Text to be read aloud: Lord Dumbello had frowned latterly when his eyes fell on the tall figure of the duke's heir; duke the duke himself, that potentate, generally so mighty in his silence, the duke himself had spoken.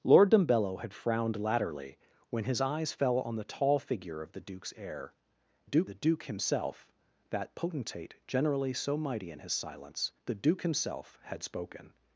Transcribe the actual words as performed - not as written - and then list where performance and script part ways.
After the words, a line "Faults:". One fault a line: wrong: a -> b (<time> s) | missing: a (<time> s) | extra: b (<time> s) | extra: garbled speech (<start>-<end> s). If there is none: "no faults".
Lord Dumbello had frowned latterly when his eyes fell on the tall figure of the duke's heir; duke the duke himself, that potentate, generally so mighty in his silence, the duke himself had spoken.
Faults:
no faults